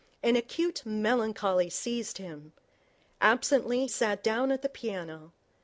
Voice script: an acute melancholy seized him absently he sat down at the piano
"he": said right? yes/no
no